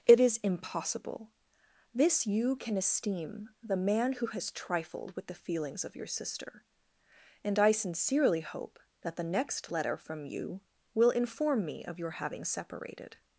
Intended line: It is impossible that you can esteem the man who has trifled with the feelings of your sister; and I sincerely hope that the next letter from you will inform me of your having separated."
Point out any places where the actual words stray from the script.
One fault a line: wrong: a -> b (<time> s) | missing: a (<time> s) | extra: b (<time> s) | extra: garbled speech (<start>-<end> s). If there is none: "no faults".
wrong: that -> this (1.9 s)